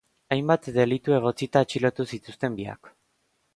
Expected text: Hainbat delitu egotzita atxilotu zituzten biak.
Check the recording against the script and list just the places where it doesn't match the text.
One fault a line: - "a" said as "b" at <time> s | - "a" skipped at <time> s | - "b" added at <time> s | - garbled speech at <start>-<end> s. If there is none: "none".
none